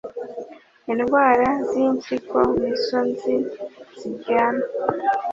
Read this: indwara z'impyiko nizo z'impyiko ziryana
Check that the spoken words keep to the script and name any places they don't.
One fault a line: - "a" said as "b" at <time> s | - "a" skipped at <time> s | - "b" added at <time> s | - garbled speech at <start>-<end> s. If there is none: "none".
- "z'impyiko" said as "nzi" at 3.1 s